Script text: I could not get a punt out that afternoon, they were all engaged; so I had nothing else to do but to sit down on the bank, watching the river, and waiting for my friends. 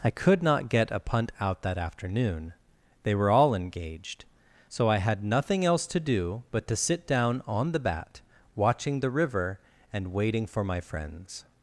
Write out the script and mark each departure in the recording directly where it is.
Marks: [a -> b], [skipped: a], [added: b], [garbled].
I could not get a punt out that afternoon, they were all engaged; so I had nothing else to do but to sit down on the [bank, -> bat] watching the river, and waiting for my friends.